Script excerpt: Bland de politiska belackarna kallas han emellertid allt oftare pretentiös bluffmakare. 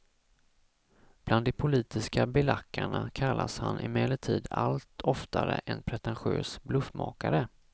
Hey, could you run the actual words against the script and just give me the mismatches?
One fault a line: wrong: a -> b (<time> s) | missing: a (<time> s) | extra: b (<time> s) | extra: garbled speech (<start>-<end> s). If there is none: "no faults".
extra: en (5.7 s)